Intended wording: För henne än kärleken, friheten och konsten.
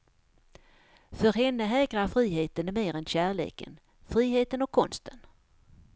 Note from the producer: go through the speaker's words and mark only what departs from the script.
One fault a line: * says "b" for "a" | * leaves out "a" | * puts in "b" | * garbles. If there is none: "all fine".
* puts in "hägrar friheten mer"